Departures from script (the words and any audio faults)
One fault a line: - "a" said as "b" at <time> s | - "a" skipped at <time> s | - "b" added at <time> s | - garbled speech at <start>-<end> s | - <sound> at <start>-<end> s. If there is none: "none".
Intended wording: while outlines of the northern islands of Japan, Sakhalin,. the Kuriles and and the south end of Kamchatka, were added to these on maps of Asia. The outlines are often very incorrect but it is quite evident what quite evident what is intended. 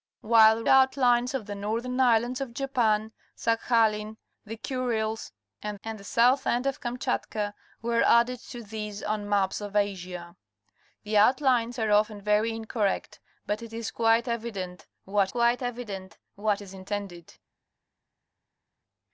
none